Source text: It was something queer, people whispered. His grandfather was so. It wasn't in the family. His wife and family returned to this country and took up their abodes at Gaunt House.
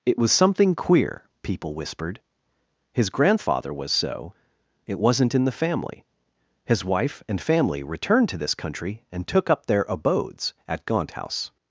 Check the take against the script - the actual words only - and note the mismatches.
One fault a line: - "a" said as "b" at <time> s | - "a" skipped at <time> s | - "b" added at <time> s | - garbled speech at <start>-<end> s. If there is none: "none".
none